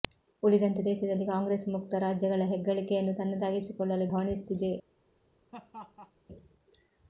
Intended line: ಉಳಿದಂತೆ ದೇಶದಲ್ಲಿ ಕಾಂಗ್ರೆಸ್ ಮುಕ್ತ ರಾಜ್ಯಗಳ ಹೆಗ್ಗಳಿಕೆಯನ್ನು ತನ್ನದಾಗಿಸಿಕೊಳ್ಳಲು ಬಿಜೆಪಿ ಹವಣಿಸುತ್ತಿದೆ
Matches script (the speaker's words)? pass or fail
fail